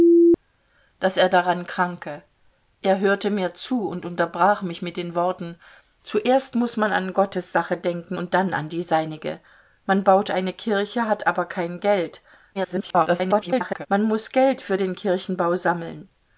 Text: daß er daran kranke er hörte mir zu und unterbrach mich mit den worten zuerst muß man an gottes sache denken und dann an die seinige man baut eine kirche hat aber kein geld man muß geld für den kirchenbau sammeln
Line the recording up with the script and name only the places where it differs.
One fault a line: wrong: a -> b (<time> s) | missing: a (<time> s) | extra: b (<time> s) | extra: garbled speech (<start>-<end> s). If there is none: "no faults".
extra: garbled speech (12.5-13.9 s)